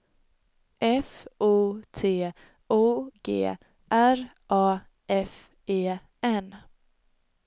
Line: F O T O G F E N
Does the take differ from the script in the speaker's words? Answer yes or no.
yes